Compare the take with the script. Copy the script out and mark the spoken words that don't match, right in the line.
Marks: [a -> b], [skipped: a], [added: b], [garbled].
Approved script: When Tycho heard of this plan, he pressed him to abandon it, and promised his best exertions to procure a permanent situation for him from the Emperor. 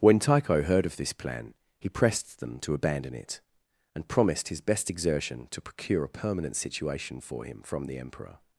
When Tycho heard of this plan, he pressed [him -> them] to abandon it, and promised his best [exertions -> exertion] to procure a permanent situation for him from the Emperor.